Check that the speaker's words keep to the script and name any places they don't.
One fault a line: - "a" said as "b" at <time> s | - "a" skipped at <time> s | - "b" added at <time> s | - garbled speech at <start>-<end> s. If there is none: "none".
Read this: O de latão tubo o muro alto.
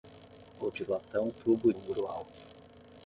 none